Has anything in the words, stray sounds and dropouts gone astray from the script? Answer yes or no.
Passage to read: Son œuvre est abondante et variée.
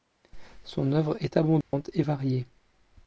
yes